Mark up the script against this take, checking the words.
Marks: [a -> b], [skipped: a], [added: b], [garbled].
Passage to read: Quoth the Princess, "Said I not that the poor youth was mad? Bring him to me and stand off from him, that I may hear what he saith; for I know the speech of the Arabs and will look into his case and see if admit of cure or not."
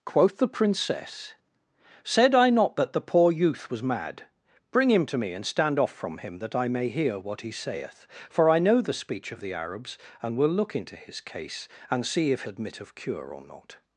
Quoth the Princess, "Said I not that the poor youth was mad? Bring him to me and stand off from him, that I may hear what he saith; for I know the speech of the Arabs and will look into his case and see if admit of cure or not."